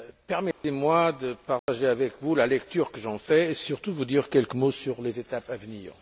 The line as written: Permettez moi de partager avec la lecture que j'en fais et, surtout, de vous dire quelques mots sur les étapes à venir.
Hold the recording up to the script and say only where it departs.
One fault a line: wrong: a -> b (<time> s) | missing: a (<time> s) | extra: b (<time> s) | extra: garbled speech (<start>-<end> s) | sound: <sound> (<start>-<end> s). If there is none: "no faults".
sound: dropout (0.5-0.6 s)
sound: dropout (1.6-1.7 s)
extra: vous (2.2 s)